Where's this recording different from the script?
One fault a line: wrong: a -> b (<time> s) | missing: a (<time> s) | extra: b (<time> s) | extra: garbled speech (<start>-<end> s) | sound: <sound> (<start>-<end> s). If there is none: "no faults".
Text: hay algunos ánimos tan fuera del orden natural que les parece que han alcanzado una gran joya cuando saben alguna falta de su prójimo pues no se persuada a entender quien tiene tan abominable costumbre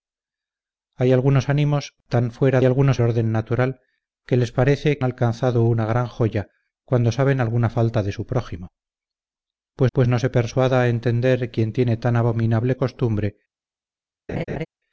wrong: del -> algunos (2.6 s)
missing: que han (5.0 s)
extra: pues (9.9 s)
sound: laugh (14.3-14.7 s)